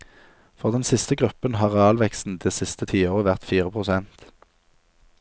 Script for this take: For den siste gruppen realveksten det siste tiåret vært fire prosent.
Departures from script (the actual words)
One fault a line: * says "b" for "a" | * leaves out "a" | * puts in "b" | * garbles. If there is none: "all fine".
* puts in "har"